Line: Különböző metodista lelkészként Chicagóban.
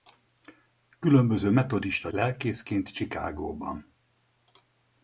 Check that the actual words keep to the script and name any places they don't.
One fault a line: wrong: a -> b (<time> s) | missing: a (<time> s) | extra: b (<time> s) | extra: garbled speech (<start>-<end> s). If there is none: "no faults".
no faults